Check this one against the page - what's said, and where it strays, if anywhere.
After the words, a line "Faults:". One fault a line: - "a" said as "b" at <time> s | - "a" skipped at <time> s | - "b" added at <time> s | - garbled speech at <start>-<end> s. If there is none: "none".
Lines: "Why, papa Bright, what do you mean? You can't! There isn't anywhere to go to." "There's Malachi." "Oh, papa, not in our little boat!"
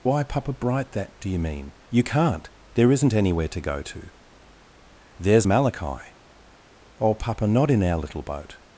"Why, papa Bright, that do you mean? You can't! There isn't anywhere to go to." "There's Malachi." "Oh, papa, not in our little boat!"
Faults:
- "what" said as "that" at 0.9 s